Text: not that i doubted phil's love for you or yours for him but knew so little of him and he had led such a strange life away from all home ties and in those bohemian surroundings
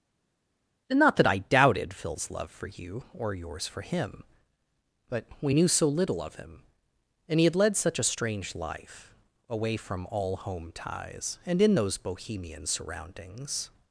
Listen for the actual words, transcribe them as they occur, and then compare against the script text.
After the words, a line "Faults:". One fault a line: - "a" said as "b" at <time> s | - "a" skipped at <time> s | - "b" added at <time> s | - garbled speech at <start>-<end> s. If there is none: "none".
not that i doubted phil's love for you or yours for him but we knew so little of him and he had led such a strange life away from all home ties and in those bohemian surroundings
Faults:
- "we" added at 5.4 s